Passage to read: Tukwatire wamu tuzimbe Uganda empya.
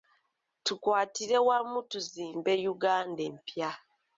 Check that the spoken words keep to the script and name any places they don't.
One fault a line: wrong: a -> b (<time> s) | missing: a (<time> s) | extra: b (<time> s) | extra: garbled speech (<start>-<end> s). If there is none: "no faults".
no faults